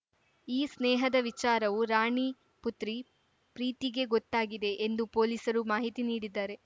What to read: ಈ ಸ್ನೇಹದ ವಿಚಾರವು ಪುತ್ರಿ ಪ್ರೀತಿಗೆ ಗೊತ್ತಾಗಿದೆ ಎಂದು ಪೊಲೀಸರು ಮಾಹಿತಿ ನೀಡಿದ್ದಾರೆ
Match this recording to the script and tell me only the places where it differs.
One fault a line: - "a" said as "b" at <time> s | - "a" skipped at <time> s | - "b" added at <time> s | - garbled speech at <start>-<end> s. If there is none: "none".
- "ರಾಣಿ" added at 1.9 s